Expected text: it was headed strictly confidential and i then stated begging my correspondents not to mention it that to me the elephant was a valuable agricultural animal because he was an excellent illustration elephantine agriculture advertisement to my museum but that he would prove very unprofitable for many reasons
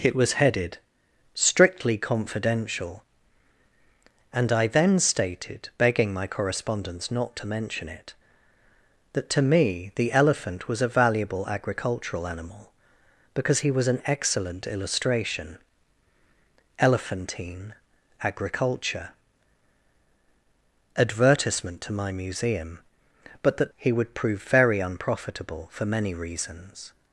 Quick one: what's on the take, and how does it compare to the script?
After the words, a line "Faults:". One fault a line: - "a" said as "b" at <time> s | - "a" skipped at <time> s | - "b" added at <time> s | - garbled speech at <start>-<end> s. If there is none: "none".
it was headed strictly confidential and i then stated begging my correspondents not to mention it that to me the elephant was a valuable agricultural animal because he was an excellent illustration elephantine agriculture advertisement to my museum but that he would prove very unprofitable for many reasons
Faults:
none